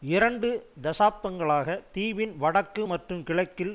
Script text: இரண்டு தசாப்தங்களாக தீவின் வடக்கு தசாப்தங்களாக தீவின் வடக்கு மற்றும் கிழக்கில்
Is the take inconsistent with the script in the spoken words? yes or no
yes